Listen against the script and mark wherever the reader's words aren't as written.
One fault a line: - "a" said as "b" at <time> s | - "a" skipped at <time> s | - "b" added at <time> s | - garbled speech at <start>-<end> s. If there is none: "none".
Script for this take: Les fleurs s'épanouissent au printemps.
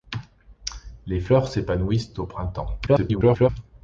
- garbled speech at 2.9-3.5 s